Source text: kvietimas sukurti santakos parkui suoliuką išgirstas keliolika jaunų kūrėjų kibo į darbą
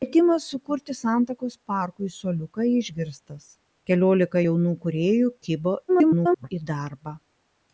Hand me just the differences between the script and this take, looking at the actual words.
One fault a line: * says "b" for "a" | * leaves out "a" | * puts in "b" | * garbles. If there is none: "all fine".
* garbles